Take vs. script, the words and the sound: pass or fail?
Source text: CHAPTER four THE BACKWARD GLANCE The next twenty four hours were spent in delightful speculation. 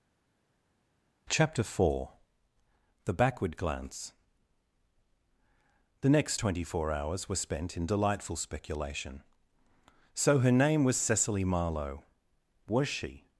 fail